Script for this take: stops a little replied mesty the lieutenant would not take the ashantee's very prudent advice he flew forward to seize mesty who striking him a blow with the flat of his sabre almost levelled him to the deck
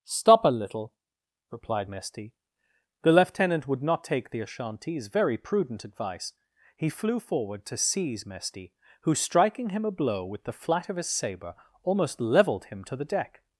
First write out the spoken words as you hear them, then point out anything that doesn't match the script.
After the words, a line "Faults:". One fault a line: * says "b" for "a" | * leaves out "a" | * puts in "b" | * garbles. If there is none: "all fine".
stop a little replied mesty the lieutenant would not take the ashantee's very prudent advice he flew forward to seize mesty who striking him a blow with the flat of his sabre almost levelled him to the deck
Faults:
* says "stop" for "stops"